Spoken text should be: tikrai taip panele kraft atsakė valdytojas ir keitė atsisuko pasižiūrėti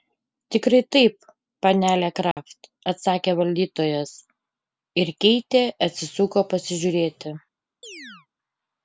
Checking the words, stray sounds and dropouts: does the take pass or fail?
fail